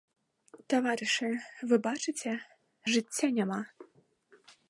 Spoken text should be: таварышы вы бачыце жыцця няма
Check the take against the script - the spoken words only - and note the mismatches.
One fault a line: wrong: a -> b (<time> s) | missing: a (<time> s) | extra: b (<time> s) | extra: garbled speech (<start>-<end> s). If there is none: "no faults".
no faults